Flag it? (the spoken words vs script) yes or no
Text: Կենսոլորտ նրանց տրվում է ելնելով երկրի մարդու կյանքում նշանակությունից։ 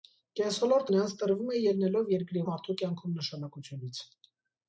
no